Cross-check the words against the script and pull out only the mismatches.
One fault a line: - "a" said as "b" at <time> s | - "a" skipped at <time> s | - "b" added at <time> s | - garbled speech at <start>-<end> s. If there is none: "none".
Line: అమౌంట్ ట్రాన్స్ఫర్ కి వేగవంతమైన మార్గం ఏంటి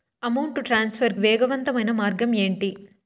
- "కి" skipped at 1.1 s